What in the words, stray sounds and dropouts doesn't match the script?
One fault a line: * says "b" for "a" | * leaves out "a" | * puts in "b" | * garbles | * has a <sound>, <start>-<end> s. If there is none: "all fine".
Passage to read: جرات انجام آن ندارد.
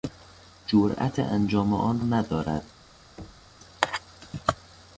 * has a thud, 3.2-3.6 s